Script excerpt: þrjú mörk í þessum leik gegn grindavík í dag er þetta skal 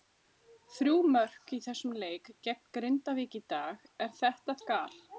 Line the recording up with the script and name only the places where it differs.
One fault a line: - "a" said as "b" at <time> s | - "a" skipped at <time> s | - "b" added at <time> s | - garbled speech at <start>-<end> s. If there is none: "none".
none